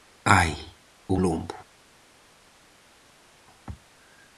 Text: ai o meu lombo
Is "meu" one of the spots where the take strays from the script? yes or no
yes